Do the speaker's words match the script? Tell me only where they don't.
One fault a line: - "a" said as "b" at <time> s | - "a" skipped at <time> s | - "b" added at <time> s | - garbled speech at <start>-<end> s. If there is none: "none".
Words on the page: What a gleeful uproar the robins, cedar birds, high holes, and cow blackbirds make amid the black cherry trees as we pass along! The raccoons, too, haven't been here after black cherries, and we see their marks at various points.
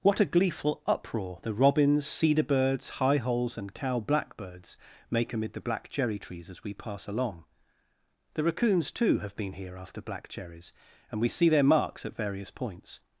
- "haven't" said as "have" at 9.2 s